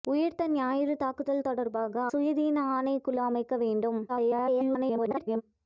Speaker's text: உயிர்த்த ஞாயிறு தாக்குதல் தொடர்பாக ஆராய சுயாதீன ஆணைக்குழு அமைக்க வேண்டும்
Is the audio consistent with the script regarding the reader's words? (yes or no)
no